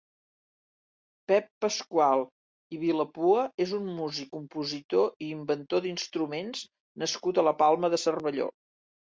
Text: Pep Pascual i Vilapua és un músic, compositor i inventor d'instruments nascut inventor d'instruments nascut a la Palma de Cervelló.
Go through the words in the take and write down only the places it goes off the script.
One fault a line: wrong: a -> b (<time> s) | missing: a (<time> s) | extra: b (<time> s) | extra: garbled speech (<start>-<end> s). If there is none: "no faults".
missing: inventor d'instruments nascut (7.4 s)